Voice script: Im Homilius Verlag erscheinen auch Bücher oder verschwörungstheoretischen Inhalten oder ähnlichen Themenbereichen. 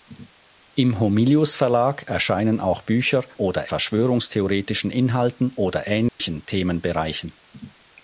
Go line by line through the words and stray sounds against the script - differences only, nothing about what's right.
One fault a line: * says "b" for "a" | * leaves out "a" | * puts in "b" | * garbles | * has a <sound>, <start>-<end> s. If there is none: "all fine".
* has a dropout, 6.1-6.2 s